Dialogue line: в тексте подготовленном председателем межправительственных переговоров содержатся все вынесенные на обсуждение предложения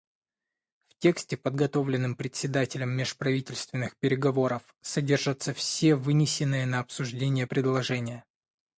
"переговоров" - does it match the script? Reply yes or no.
yes